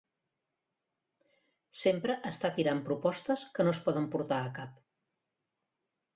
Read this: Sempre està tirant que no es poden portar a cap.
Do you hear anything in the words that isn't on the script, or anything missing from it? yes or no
yes